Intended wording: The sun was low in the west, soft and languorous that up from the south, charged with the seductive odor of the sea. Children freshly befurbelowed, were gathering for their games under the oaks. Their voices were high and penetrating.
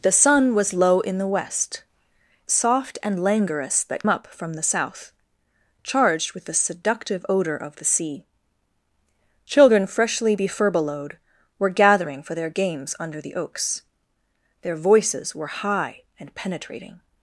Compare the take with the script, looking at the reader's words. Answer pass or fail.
pass